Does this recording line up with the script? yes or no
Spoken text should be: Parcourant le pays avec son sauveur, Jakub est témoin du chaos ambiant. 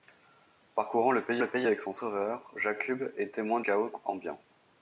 no